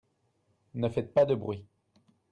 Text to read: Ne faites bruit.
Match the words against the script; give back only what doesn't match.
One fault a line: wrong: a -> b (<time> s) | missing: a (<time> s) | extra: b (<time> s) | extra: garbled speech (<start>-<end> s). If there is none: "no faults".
extra: pas de (1.1 s)